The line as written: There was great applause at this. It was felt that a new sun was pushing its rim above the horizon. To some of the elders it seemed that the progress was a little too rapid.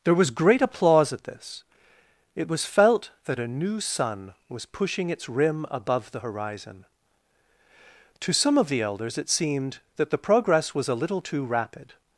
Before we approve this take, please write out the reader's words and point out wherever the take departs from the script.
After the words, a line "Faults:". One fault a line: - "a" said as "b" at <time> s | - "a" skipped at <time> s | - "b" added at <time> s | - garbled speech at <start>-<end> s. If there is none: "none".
There was great applause at this. It was felt that a new sun was pushing its rim above the horizon. To some of the elders it seemed that the progress was a little too rapid.
Faults:
none